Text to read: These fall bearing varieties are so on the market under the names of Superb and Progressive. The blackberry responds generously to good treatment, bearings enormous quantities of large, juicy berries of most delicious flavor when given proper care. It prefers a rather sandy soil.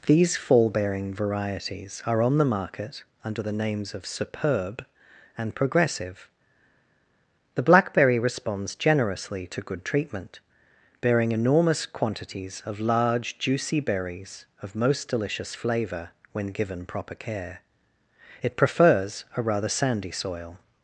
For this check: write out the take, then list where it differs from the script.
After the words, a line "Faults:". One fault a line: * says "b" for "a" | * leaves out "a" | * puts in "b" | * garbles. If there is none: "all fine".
These fall bearing varieties are on the market under the names of Superb and Progressive. The blackberry responds generously to good treatment, bearing enormous quantities of large, juicy berries of most delicious flavor when given proper care. It prefers a rather sandy soil.
Faults:
* leaves out "so"
* says "bearing" for "bearings"